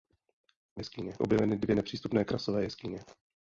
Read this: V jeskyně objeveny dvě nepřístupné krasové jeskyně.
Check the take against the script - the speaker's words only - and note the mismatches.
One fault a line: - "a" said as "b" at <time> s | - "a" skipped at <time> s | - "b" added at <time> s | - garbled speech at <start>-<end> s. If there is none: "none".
none